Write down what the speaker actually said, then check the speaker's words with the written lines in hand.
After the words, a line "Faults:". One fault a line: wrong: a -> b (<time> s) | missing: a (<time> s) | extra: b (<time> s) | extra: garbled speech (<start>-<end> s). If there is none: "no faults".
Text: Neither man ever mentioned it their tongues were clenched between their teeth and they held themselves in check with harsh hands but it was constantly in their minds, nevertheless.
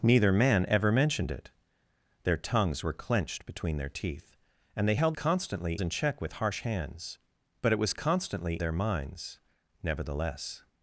Neither man ever mentioned it their tongues were clenched between their teeth and they held constantly in check with harsh hands but it was constantly their minds, nevertheless.
Faults:
wrong: themselves -> constantly (5.1 s)
missing: in (8.6 s)